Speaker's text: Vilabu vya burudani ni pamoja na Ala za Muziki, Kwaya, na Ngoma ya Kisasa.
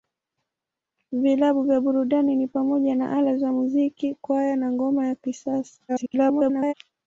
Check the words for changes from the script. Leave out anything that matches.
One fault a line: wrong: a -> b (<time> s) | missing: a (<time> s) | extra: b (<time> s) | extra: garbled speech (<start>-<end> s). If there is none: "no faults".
extra: garbled speech (5.9-6.7 s)